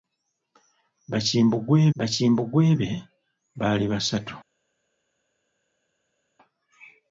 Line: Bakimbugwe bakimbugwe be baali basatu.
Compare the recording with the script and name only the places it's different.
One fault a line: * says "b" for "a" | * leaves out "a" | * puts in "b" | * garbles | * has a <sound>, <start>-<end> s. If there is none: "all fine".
all fine